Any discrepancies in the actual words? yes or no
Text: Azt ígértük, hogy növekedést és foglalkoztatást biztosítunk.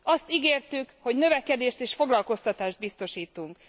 no